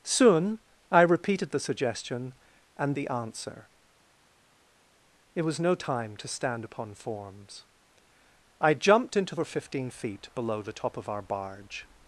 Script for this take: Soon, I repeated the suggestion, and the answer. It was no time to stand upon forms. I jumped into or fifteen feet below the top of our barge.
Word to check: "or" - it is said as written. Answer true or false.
true